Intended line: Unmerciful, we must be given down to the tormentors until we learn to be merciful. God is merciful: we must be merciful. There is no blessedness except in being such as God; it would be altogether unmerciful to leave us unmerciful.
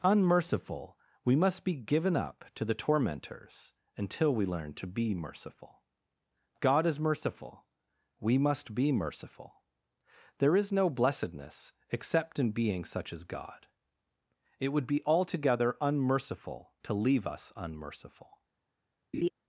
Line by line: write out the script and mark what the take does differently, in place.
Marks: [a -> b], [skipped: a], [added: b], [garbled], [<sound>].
Unmerciful, we must be given [down -> up] to the tormentors until we learn to be merciful. God is merciful: we must be merciful. There is no blessedness except in being such as God; it would be altogether unmerciful to leave us unmerciful. [laugh]